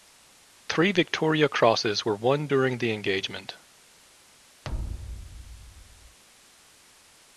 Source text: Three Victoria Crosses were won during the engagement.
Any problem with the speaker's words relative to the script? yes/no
no